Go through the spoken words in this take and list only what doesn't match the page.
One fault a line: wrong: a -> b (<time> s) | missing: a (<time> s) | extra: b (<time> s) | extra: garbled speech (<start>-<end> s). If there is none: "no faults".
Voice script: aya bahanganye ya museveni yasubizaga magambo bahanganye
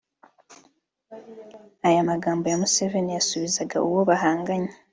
wrong: bahanganye -> magambo (2.1 s)
wrong: magambo -> uwo (3.9 s)